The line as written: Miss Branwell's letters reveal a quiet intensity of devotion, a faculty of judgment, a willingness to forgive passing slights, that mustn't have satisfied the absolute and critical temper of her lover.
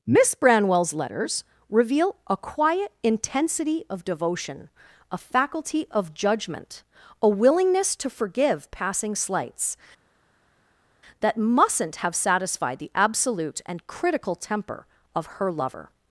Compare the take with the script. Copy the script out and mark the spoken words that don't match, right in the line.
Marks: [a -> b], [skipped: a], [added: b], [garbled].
Miss Branwell's letters reveal a quiet intensity of devotion, a faculty of judgment, a willingness to forgive passing slights, that mustn't have satisfied the absolute and critical temper of her lover.